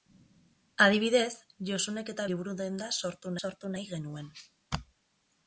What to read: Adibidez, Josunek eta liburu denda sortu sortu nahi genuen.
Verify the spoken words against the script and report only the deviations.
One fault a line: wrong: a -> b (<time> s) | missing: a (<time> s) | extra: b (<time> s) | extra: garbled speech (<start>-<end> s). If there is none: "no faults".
no faults